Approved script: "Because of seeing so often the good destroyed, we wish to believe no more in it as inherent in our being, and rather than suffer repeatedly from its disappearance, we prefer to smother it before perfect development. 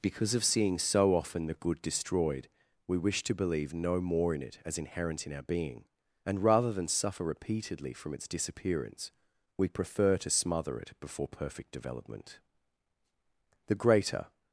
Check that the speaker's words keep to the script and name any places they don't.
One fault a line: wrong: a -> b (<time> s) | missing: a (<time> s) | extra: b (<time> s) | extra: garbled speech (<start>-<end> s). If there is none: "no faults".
extra: The greater (13.7 s)